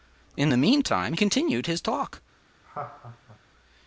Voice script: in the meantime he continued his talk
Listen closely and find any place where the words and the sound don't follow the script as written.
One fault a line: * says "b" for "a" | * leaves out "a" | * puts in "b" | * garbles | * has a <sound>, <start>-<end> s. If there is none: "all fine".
* leaves out "he"
* has a laugh, 2.6-3.4 s